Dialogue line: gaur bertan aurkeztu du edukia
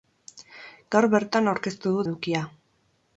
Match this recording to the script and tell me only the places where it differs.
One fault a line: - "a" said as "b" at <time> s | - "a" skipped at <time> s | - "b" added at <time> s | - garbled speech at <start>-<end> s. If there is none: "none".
none